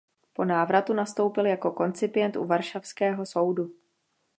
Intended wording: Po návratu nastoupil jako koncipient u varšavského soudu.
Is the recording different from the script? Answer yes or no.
no